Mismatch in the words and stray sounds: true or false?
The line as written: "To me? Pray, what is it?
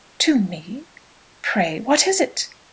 false